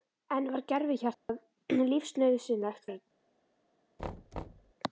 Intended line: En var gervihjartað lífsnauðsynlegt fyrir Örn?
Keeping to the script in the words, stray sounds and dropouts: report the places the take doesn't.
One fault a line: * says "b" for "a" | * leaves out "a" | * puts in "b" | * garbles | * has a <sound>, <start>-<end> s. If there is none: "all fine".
* has a dropout, 1.1-1.3 s
* leaves out "fyrir"
* has a thud, 4.0-4.7 s